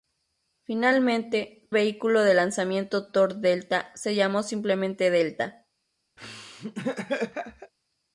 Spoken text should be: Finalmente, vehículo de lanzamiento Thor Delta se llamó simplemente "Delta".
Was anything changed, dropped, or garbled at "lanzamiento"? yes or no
no